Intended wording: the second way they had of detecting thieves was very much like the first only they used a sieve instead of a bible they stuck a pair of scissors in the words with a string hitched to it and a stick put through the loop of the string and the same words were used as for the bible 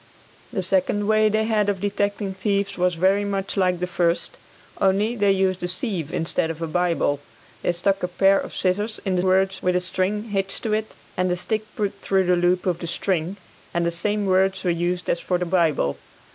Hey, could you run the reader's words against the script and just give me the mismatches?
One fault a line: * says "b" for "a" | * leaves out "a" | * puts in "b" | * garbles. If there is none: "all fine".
all fine